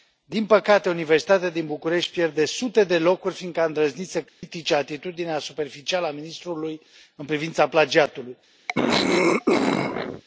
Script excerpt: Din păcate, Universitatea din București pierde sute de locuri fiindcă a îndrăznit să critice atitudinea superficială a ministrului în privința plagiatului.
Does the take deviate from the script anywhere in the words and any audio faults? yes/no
yes